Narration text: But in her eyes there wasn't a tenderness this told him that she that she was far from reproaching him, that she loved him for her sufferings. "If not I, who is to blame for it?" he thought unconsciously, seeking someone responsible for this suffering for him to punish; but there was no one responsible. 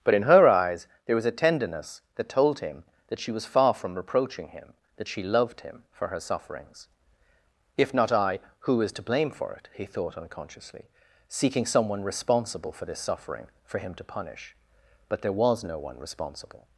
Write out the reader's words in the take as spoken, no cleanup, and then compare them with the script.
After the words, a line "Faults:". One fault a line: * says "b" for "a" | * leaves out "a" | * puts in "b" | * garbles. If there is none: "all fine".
But in her eyes there was a tenderness that told him that she was far from reproaching him, that she loved him for her sufferings. "If not I, who is to blame for it?" he thought unconsciously, seeking someone responsible for this suffering for him to punish; but there was no one responsible.
Faults:
* says "was" for "wasn't"
* says "that" for "this"
* leaves out "that she"